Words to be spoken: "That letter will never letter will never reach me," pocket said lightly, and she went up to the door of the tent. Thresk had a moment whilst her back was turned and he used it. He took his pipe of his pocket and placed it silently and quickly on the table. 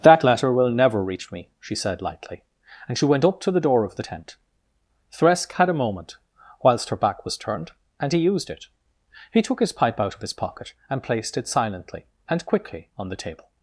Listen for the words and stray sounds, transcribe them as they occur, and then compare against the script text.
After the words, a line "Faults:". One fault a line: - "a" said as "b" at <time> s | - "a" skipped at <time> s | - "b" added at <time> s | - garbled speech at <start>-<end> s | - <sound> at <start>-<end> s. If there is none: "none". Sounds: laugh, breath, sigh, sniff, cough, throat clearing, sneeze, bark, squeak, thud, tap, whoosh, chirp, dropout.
"That letter will never reach me," she said lightly, and she went up to the door of the tent. Thresk had a moment whilst her back was turned and he used it. He took his pipe out of his pocket and placed it silently and quickly on the table.
Faults:
- "letter will never" skipped at 1.0 s
- "pocket" said as "she" at 1.6 s
- "out" added at 10.0 s